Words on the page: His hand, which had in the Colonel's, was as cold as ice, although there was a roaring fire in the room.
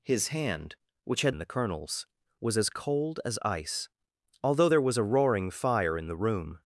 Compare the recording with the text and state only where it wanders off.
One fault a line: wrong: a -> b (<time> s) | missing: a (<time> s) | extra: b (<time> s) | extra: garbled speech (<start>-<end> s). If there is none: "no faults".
no faults